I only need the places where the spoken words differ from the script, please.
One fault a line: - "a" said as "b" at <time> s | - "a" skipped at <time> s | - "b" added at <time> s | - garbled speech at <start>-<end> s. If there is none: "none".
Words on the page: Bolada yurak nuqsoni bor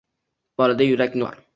- "nuqsoni" skipped at 1.2 s